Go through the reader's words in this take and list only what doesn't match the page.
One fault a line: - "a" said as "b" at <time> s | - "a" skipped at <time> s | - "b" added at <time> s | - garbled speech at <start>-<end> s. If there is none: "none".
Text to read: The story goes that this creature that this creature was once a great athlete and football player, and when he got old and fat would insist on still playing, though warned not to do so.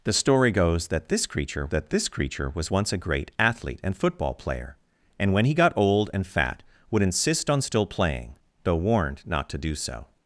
none